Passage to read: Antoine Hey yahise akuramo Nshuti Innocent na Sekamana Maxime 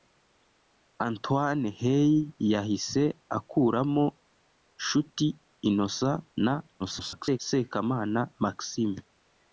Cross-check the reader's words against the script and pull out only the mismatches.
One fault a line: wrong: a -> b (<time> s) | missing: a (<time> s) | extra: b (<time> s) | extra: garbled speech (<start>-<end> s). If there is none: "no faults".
extra: garbled speech (6.8-7.4 s)